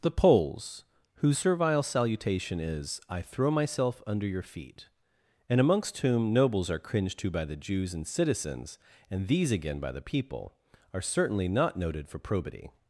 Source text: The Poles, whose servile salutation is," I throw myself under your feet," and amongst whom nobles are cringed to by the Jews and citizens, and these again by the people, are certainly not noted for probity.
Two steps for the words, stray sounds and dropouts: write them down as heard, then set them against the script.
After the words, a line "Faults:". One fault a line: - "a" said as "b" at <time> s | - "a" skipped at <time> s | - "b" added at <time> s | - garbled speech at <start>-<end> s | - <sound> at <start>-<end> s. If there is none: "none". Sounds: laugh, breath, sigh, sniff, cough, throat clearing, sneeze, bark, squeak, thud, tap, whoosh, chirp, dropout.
The Poles, whose servile salutation is," I throw myself under your feet," and amongst whom nobles are cringed to by the Jews and citizens, and these again by the people, are certainly not noted for probity.
Faults:
none